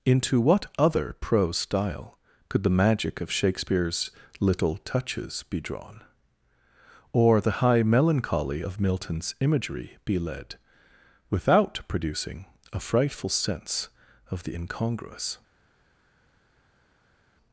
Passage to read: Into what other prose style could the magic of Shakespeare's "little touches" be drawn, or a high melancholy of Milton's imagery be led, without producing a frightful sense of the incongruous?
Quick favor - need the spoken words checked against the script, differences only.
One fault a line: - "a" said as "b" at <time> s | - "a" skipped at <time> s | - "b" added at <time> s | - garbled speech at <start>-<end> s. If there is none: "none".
- "a" said as "the" at 7.4 s